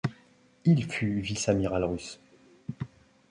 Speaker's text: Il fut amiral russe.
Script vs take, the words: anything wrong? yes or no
yes